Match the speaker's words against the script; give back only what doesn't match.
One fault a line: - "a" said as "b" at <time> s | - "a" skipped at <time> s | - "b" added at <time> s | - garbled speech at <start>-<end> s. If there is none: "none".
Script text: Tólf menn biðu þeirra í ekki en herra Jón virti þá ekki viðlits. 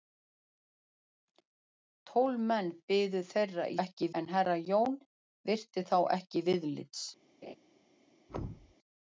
none